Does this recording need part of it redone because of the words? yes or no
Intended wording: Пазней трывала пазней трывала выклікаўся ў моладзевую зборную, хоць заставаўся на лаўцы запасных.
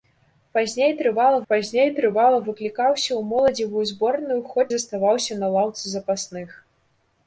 no